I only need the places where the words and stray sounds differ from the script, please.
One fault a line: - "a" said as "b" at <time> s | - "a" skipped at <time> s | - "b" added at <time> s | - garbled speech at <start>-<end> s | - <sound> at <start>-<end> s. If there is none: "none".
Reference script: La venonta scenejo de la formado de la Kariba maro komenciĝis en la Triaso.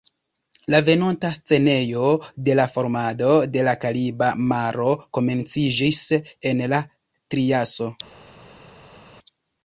none